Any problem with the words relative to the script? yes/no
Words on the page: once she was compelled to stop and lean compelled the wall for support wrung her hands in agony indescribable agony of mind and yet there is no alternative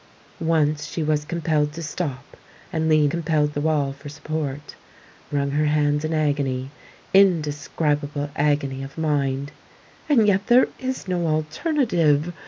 no